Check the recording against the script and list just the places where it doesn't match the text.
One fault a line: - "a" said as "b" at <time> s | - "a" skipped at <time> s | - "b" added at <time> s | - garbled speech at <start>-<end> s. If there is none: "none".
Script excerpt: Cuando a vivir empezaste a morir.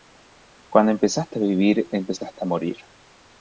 - "empezaste" added at 0.9 s